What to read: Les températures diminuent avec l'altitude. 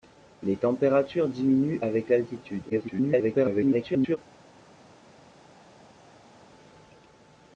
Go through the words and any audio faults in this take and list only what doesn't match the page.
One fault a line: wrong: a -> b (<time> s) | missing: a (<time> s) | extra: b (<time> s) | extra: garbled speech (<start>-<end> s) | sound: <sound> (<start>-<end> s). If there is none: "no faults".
extra: garbled speech (2.7-4.2 s)